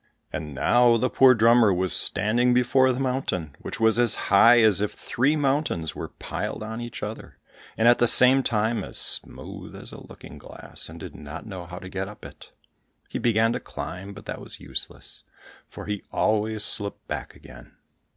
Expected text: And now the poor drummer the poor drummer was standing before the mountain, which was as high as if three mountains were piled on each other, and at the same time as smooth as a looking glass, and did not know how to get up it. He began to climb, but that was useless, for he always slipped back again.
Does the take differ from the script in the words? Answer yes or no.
yes